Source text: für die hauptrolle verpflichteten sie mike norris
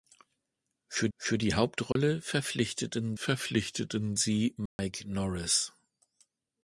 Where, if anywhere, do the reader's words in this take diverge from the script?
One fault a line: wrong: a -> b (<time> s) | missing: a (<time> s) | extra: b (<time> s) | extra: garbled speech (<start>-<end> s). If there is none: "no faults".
extra: für (1.2 s)
extra: verpflichteten (3.1 s)